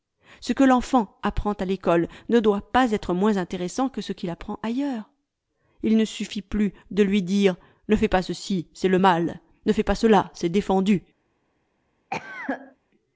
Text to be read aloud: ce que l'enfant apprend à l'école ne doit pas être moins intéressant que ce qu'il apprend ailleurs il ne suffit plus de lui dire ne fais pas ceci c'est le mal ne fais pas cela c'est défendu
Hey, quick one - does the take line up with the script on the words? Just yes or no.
yes